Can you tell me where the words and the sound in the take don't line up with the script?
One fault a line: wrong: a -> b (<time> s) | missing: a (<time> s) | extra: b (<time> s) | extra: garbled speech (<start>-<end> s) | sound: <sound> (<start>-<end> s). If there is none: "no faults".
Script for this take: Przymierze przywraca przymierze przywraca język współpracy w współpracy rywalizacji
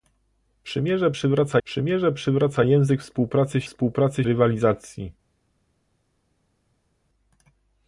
no faults